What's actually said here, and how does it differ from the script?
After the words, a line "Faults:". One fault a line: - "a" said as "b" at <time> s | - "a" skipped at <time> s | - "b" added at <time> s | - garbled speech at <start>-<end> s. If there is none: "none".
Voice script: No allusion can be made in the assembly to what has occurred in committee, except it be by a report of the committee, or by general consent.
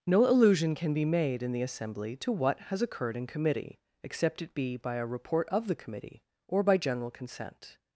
No allusion can be made in the assembly to what has occurred in committee, except it be by a report of the committee, or by general consent.
Faults:
none